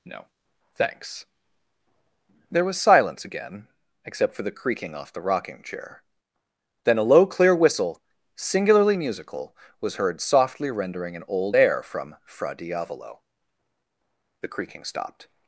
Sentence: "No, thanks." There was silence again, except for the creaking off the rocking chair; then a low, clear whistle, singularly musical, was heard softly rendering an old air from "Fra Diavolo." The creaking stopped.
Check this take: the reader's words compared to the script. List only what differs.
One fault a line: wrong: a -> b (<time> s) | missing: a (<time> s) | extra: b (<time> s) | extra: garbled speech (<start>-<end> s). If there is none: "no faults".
no faults